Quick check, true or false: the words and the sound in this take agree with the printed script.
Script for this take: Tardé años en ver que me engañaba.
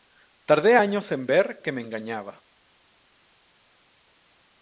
true